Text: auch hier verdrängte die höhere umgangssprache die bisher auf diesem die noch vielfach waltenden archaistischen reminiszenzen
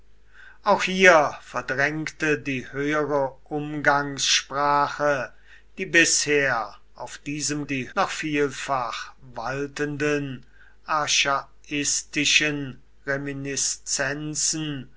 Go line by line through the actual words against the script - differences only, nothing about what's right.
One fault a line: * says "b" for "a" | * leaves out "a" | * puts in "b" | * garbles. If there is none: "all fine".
all fine